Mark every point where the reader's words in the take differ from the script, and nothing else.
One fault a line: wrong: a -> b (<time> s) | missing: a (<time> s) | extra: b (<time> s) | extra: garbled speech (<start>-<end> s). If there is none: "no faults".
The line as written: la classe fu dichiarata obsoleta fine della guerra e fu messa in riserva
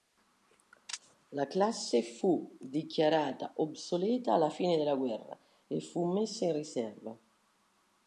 extra: alla (4.3 s)